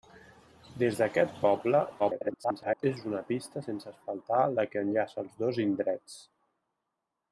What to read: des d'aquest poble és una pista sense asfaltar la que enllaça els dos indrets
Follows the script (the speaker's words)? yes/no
no